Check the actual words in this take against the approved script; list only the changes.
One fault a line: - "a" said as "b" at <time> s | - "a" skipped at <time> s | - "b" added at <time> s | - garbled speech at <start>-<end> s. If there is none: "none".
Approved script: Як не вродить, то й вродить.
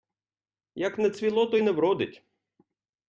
- "вродить" said as "цвіло" at 1.1 s
- "не" added at 1.6 s